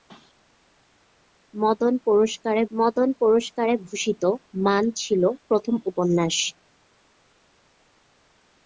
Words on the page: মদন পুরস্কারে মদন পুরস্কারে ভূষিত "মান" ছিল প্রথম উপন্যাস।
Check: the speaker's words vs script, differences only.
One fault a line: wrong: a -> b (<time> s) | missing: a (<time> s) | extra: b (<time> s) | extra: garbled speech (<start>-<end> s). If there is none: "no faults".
no faults